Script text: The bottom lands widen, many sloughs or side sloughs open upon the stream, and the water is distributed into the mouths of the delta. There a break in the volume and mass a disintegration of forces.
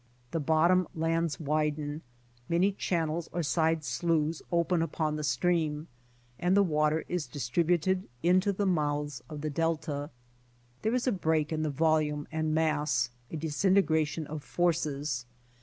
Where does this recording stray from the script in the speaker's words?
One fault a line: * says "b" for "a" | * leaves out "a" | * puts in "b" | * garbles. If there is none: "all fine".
* says "channels" for "sloughs"
* puts in "is"